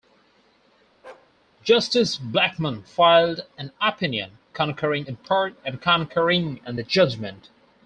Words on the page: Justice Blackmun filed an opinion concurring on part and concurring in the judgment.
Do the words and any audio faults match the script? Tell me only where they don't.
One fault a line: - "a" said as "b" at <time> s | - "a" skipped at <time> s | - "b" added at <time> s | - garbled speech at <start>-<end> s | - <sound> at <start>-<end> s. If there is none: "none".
- bark at 1.0-1.3 s
- "on" said as "in" at 5.0 s